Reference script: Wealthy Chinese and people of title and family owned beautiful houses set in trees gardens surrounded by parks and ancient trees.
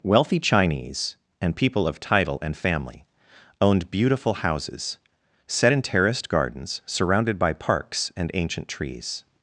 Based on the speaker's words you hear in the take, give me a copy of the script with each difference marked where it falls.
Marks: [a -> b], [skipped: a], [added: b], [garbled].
Wealthy Chinese and people of title and family owned beautiful houses set in [trees -> terraced] gardens surrounded by parks and ancient trees.